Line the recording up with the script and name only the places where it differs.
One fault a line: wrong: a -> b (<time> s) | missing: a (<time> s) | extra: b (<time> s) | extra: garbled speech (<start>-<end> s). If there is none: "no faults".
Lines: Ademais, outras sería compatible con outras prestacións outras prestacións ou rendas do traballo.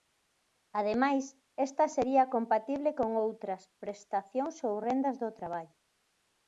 wrong: outras -> esta (1.7 s)
missing: outras prestacións (4.5 s)